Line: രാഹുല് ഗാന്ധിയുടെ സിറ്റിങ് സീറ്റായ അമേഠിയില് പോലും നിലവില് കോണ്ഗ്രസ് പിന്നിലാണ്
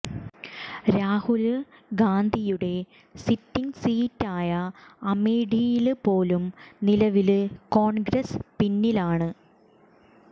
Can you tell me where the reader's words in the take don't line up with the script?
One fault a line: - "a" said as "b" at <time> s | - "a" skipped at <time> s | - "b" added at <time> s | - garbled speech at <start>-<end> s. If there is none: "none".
none